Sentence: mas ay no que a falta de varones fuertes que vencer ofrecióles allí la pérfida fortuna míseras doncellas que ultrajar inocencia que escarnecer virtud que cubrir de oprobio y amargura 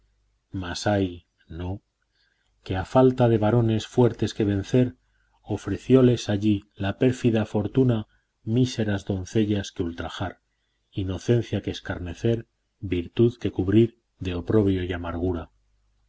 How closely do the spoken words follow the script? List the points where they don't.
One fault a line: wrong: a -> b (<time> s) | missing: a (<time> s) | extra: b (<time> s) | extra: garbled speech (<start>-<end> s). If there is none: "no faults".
no faults